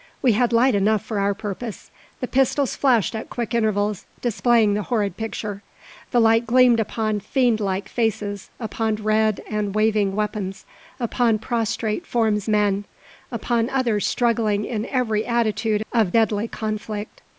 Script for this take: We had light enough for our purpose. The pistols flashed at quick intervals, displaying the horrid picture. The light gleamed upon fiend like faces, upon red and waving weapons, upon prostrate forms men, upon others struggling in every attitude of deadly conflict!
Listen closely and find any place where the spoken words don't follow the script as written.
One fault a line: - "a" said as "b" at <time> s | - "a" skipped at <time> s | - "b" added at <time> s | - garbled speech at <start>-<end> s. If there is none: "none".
none